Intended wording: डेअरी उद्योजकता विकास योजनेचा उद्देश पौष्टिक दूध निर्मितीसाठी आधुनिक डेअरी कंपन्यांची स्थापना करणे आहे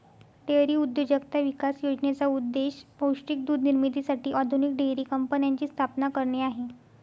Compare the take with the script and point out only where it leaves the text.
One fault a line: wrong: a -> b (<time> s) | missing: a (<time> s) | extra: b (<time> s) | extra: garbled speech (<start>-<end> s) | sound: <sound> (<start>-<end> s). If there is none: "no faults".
no faults